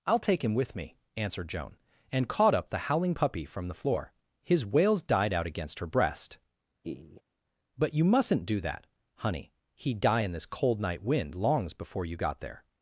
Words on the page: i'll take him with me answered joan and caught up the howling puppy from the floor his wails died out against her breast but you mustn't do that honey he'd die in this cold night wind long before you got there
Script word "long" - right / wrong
wrong